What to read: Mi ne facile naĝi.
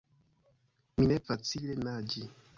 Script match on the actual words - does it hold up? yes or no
yes